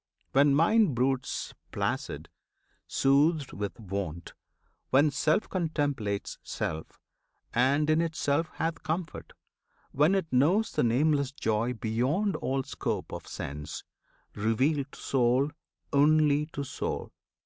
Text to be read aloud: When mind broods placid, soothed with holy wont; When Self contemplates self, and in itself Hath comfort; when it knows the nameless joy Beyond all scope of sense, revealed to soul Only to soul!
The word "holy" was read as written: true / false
false